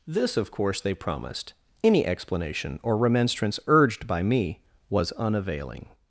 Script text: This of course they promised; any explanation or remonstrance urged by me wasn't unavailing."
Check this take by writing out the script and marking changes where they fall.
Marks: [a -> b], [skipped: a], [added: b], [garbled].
This of course they promised; any explanation or remonstrance urged by me [wasn't -> was] unavailing."